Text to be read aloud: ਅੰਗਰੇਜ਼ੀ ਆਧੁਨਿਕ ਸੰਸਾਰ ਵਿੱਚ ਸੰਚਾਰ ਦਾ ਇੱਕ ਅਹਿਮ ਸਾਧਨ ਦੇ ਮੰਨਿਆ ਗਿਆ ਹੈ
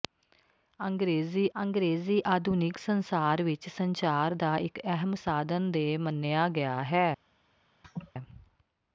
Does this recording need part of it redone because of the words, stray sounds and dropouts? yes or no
yes